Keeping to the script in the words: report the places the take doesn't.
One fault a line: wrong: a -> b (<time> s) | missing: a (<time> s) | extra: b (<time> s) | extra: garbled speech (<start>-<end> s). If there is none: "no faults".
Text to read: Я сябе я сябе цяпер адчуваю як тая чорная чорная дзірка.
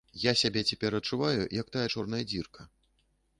missing: я сябе (0.6 s)
missing: чорная (2.2 s)